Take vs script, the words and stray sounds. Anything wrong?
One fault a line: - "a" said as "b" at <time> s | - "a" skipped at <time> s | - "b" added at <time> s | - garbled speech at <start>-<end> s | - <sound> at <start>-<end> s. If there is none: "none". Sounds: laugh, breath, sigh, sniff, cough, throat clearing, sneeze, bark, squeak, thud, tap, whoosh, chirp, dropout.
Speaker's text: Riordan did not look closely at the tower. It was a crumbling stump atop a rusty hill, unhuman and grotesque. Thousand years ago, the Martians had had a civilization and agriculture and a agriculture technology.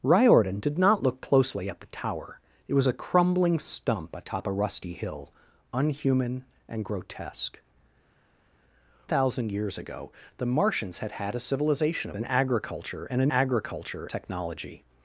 none